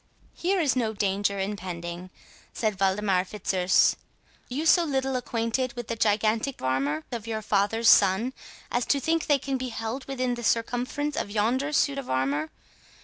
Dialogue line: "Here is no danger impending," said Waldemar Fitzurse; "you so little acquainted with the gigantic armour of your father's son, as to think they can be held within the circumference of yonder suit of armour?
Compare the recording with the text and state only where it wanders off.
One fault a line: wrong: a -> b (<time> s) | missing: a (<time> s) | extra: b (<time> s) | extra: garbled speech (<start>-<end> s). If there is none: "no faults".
no faults